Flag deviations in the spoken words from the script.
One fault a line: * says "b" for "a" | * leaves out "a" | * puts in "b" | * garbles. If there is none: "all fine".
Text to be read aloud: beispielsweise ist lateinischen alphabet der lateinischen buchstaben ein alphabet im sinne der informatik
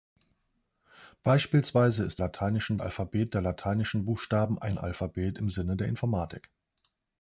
all fine